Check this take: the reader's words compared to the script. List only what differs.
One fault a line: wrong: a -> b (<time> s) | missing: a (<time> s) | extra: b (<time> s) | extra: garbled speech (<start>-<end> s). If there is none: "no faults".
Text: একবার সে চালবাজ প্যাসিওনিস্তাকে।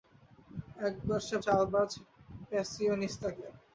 no faults